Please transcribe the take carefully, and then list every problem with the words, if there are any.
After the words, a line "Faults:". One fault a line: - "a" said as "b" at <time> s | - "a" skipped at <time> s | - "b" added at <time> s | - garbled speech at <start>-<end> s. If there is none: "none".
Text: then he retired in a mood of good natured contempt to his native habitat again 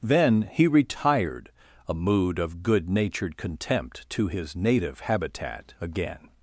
then he retired a mood of good natured contempt to his native habitat again
Faults:
- "in" skipped at 1.5 s